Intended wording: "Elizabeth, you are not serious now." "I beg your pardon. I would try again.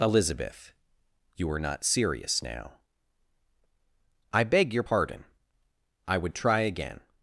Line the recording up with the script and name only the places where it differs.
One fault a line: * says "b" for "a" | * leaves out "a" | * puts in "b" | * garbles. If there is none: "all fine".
all fine